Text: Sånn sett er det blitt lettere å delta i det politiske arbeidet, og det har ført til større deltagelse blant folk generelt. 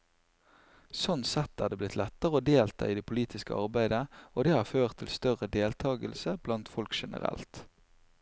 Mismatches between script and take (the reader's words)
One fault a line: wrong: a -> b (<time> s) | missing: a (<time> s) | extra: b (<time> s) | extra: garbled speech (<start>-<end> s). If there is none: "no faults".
no faults